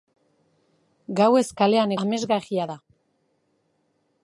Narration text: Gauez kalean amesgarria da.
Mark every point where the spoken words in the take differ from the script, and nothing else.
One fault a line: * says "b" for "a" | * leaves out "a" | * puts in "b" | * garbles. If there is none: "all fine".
all fine